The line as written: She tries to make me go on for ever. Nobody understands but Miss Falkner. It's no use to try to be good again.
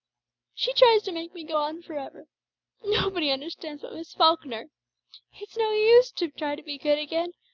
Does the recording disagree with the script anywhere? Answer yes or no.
no